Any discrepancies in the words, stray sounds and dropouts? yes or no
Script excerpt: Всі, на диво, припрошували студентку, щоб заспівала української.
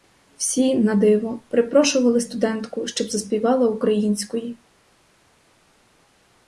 no